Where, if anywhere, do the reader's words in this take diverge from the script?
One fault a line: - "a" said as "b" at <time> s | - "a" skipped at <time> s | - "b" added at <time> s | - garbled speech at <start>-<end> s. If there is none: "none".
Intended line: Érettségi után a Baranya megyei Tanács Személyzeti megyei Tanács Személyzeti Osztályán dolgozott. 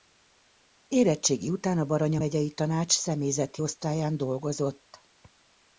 - "megyei Tanács Személyzeti" skipped at 3.6 s